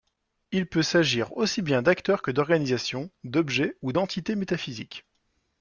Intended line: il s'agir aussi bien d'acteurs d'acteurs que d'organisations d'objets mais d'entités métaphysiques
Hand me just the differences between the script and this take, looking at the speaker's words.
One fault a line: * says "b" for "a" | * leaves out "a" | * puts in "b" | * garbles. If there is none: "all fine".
* puts in "peut"
* leaves out "d'acteurs"
* says "ou" for "mais"